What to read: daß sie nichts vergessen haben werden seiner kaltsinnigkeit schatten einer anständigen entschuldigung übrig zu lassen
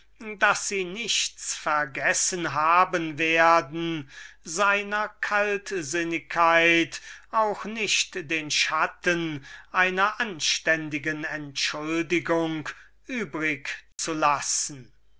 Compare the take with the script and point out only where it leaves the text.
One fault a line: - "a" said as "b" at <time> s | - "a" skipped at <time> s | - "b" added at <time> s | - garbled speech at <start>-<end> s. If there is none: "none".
- "auch nicht den" added at 7.3 s